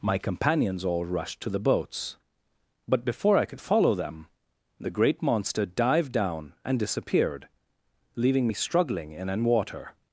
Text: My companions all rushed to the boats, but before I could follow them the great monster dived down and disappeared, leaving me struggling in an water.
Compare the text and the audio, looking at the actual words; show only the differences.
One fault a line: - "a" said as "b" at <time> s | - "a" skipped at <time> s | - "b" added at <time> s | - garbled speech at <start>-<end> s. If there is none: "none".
none